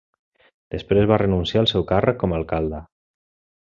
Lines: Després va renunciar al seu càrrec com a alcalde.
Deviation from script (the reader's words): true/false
false